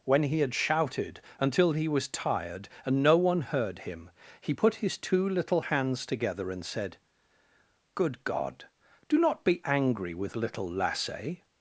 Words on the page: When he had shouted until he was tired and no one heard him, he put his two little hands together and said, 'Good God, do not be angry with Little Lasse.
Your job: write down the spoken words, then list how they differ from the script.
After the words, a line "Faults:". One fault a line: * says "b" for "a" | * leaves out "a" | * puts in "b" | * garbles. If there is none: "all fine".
When he had shouted until he was tired and no one heard him, he put his two little hands together and said, 'Good God, do not be angry with Little Lasse.
Faults:
all fine